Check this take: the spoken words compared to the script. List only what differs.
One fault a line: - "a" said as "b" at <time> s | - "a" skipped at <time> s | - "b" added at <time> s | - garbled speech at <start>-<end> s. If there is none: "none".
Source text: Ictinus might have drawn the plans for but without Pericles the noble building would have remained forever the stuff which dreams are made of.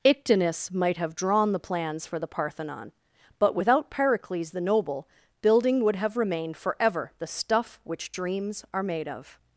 - "the Parthenon" added at 2.2 s